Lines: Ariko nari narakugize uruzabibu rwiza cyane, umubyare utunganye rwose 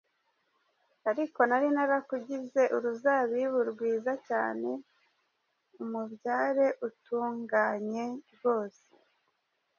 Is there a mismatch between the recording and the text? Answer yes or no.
no